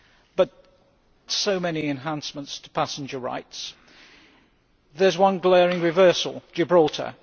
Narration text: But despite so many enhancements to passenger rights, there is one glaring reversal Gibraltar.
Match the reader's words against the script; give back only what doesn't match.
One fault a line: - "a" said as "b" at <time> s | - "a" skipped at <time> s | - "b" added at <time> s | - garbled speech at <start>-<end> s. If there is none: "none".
- "despite" skipped at 0.5 s